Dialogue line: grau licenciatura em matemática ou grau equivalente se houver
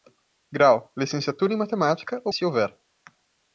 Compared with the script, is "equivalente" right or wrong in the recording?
wrong